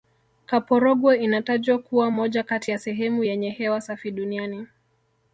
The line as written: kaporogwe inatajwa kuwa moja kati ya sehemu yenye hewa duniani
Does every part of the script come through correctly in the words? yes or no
no